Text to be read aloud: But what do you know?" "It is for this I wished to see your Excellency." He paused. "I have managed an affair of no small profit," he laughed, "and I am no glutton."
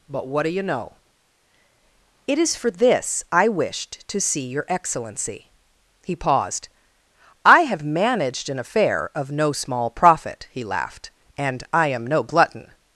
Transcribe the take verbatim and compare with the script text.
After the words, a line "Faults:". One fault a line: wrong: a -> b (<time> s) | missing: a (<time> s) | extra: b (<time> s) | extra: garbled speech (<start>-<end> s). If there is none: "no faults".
But what do you know?" "It is for this I wished to see your Excellency." He paused. "I have managed an affair of no small profit," he laughed, "and I am no glutton."
Faults:
no faults